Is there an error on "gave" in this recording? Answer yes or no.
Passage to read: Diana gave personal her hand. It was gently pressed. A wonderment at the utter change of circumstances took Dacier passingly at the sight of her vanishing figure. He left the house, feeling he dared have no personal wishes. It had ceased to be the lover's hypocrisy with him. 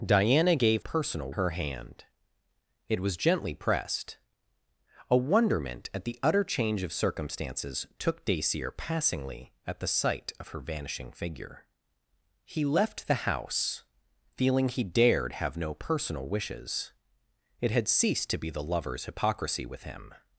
no